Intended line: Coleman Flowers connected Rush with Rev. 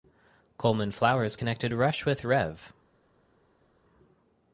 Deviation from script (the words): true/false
false